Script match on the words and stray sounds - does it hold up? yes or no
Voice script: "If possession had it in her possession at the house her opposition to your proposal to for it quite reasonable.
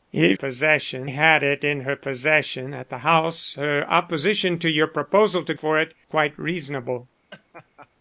no